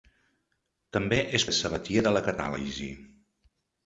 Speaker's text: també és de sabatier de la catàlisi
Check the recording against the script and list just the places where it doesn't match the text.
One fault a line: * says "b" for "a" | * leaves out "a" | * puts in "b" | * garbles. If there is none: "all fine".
all fine